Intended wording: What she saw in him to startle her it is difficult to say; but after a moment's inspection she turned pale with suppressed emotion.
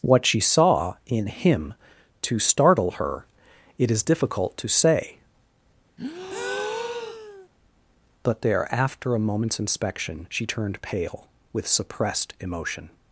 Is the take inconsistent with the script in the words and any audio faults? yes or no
yes